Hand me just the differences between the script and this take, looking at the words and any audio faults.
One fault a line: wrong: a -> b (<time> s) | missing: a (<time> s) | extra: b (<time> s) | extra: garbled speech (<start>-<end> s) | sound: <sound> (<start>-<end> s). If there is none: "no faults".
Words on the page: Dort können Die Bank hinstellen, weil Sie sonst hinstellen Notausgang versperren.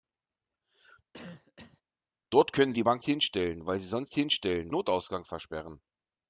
sound: cough (1.1-1.8 s)